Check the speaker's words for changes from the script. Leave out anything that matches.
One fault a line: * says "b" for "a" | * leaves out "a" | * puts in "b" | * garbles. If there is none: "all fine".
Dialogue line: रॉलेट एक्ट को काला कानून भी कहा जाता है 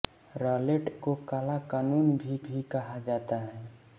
* leaves out "एक्ट"
* puts in "भी"